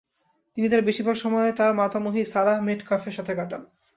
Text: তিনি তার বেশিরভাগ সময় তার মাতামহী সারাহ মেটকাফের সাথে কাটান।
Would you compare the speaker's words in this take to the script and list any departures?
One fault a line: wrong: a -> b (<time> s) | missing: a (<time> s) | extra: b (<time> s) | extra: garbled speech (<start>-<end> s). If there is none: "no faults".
no faults